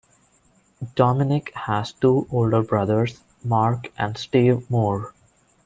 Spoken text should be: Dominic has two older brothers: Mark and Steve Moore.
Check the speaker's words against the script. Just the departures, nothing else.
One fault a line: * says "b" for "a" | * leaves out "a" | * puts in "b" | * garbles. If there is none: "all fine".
all fine